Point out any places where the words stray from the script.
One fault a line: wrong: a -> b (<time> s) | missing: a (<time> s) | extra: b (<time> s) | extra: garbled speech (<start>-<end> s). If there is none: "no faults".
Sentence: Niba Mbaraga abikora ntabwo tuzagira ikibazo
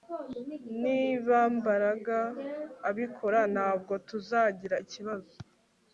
no faults